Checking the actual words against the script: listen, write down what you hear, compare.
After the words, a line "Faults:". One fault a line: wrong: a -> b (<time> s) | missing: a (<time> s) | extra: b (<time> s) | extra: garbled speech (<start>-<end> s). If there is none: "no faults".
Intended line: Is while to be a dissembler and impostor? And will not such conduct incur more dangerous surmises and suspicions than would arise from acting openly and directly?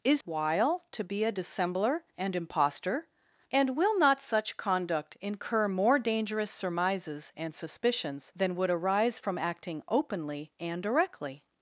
Is while to be a dissembler and impostor? And will not such conduct incur more dangerous surmises and suspicions than would arise from acting openly and directly?
Faults:
no faults